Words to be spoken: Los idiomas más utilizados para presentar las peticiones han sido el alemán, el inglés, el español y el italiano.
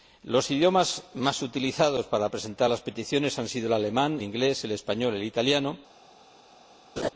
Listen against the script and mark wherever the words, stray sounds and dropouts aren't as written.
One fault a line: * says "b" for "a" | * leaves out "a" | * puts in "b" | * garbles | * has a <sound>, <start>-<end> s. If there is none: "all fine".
* leaves out "el"
* has a laugh, 7.0-7.1 s